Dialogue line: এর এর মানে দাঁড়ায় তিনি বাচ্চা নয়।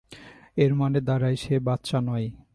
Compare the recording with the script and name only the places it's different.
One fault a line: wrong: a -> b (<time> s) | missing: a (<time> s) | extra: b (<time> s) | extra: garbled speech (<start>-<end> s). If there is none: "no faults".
missing: এর (0.7 s)
wrong: তিনি -> সে (1.4 s)